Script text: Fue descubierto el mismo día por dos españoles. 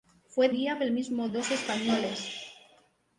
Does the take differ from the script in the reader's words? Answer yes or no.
yes